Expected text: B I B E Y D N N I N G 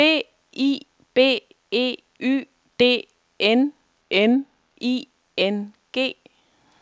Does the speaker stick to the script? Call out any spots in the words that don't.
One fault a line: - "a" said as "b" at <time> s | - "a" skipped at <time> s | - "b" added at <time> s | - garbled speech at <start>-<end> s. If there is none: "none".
none